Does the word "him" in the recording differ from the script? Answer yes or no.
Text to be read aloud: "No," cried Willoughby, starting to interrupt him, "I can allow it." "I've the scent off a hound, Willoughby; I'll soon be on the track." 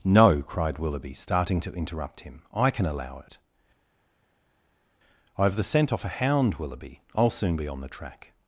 no